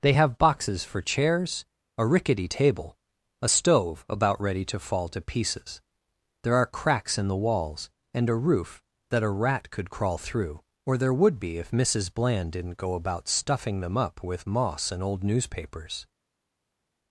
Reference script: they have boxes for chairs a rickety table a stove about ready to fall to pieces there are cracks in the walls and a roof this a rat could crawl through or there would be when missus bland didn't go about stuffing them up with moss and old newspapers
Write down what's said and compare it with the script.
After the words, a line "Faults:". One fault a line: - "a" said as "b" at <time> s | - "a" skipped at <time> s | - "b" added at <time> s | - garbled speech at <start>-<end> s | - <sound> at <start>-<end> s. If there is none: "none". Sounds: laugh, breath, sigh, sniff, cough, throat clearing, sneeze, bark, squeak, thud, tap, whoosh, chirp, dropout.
they have boxes for chairs a rickety table a stove about ready to fall to pieces there are cracks in the walls and a roof that a rat could crawl through or there would be if missus bland didn't go about stuffing them up with moss and old newspapers
Faults:
- "this" said as "that" at 9.1 s
- "when" said as "if" at 11.6 s